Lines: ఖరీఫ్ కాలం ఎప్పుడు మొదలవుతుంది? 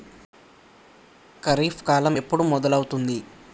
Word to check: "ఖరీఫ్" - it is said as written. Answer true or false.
true